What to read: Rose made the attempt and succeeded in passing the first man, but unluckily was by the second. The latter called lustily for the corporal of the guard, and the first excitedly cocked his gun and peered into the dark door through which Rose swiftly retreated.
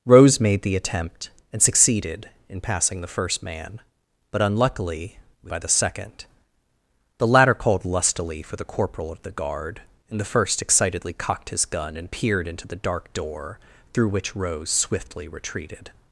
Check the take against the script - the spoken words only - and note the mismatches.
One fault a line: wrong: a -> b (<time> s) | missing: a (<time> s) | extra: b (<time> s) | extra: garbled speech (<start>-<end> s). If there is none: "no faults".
no faults